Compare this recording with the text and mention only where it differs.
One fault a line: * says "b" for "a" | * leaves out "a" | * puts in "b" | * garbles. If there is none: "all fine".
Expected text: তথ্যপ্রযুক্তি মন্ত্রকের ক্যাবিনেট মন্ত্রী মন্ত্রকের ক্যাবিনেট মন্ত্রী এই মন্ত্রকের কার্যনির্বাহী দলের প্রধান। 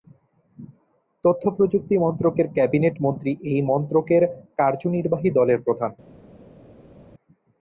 * leaves out "মন্ত্রকের ক্যাবিনেট মন্ত্রী"